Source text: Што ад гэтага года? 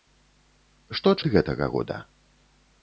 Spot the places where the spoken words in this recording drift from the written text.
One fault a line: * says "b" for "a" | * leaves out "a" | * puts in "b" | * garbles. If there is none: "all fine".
all fine